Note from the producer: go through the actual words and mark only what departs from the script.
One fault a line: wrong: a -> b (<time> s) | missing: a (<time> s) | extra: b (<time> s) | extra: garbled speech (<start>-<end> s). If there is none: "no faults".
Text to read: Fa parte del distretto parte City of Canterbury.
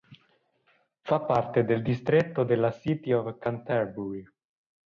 wrong: parte -> della (2.4 s)